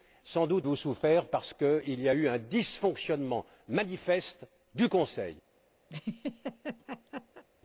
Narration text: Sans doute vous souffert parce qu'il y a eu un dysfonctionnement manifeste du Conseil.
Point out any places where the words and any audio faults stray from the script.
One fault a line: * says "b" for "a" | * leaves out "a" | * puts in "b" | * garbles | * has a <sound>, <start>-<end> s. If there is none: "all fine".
* has a laugh, 5.9-7.4 s